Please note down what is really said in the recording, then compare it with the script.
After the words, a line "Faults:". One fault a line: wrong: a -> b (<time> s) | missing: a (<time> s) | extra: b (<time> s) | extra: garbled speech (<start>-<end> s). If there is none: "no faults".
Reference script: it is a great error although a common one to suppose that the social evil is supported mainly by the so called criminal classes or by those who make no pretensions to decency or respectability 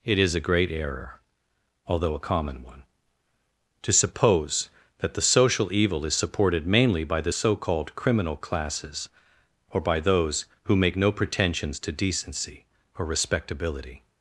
it is a great error although a common one to suppose that the social evil is supported mainly by the so called criminal classes or by those who make no pretensions to decency or respectability
Faults:
no faults